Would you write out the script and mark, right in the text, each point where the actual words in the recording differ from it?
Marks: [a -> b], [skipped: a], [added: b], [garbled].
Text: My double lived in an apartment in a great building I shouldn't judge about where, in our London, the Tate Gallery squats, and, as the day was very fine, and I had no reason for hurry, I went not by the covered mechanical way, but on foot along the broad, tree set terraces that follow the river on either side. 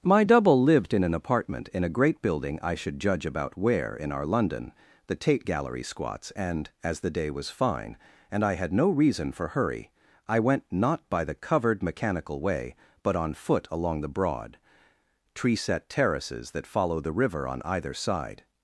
My double lived in an apartment in a great building I [shouldn't -> should] judge about where, in our London, the Tate Gallery squats, and, as the day was [skipped: very] fine, and I had no reason for hurry, I went not by the covered mechanical way, but on foot along the broad, tree set terraces that follow the river on either side.